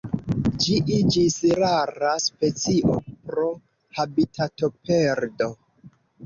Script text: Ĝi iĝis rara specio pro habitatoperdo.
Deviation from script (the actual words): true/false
false